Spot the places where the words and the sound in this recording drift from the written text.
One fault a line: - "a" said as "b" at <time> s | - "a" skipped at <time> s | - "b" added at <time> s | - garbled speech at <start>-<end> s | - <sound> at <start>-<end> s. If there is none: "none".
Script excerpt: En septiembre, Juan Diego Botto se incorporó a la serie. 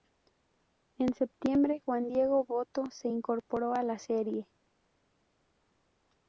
none